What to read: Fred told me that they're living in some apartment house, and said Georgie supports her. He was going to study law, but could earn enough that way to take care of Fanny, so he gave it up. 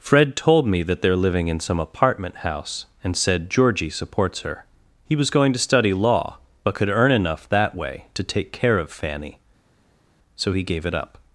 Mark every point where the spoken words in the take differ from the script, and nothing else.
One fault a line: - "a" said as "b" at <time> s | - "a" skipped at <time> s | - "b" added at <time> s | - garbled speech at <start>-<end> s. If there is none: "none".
none